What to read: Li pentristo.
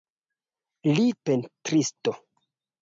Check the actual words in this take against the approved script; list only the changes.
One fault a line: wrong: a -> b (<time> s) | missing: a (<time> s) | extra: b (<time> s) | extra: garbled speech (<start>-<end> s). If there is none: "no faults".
no faults